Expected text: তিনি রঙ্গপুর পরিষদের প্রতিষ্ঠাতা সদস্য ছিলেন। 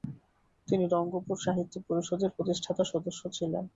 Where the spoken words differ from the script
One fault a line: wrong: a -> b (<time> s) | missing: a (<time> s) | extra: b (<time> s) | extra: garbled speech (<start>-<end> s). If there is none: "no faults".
extra: সাহিত্য (1.4 s)